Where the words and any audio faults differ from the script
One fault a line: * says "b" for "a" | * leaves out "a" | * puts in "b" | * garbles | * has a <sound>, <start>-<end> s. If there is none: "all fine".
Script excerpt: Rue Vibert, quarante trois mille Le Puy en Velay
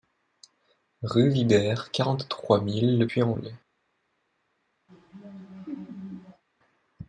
* has a laugh, 4.9-6.4 s